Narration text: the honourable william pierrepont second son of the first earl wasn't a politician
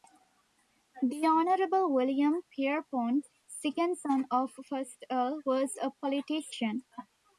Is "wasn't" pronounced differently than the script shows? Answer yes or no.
yes